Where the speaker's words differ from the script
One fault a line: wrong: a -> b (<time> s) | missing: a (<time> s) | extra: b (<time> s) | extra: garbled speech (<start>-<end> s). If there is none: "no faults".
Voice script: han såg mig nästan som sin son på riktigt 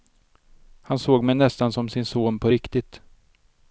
no faults